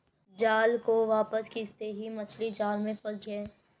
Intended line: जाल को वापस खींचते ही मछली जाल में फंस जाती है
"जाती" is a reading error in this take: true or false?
true